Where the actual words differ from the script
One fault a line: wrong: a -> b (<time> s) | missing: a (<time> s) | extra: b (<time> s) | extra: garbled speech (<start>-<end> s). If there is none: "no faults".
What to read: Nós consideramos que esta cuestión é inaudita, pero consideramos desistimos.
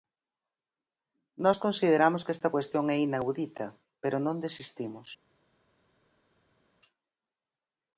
wrong: consideramos -> non (4.2 s)